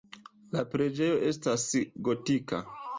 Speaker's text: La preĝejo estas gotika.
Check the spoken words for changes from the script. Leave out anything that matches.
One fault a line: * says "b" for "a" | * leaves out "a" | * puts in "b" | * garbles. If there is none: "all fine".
all fine